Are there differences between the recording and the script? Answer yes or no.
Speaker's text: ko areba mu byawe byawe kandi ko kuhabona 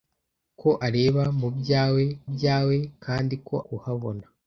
no